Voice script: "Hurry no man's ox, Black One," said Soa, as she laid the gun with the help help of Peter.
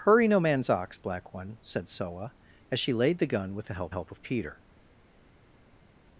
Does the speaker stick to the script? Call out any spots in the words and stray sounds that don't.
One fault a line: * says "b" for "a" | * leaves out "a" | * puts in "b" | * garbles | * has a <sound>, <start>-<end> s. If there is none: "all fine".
all fine